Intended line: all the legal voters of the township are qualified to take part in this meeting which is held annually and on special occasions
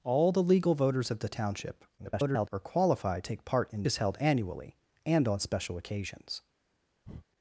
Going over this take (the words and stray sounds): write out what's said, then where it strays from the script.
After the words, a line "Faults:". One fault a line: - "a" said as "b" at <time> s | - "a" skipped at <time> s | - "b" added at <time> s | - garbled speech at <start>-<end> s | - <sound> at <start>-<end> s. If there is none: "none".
all the legal voters of the township [garbled] are qualified take part in is held annually and on special occasions
Faults:
- garbled speech at 2.0-2.5 s
- "to" skipped at 3.2 s
- "this meeting which" skipped at 3.8 s
- breath at 7.0-7.3 s